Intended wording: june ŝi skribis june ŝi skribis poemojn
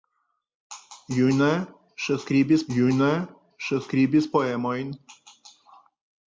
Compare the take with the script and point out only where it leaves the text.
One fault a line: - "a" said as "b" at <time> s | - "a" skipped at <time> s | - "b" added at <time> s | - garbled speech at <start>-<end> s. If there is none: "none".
none